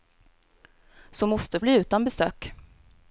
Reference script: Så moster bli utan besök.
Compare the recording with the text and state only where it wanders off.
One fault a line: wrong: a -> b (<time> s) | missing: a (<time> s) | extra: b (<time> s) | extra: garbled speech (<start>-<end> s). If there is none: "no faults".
no faults